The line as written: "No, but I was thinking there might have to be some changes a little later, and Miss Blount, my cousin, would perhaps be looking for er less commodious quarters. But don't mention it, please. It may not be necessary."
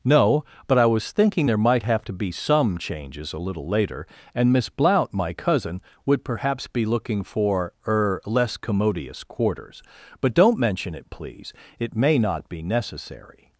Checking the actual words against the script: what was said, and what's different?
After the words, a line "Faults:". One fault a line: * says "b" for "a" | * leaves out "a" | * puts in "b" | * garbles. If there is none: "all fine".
"No, but I was thinking there might have to be some changes a little later, and Miss Blount, my cousin, would perhaps be looking for er less commodious quarters. But don't mention it, please. It may not be necessary."
Faults:
all fine